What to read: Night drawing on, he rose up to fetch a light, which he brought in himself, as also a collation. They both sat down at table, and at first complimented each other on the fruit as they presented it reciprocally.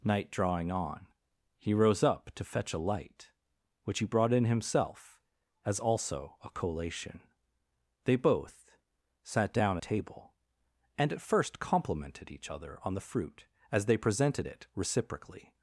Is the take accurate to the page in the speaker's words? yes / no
no